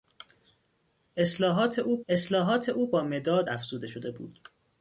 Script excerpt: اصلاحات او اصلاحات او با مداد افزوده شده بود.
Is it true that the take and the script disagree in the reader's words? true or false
false